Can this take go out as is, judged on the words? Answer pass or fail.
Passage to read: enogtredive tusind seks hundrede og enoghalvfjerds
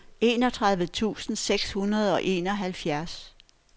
pass